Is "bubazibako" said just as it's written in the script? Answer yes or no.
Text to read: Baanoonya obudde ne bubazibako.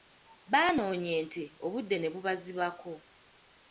yes